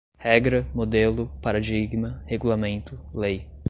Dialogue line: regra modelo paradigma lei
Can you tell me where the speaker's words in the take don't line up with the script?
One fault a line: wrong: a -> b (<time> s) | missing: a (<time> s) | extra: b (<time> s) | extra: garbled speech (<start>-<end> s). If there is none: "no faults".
extra: regulamento (2.3 s)